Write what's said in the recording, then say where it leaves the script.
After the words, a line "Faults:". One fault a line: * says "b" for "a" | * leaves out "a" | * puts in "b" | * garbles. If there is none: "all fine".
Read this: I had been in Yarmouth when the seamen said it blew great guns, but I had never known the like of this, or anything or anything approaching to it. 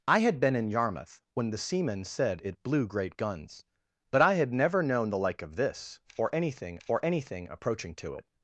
I had been in Yarmouth when the seamen said it blew great guns, but I had never known the like of this, or anything or anything approaching to it.
Faults:
all fine